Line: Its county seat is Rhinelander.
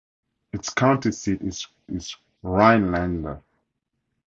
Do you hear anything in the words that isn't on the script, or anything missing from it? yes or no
yes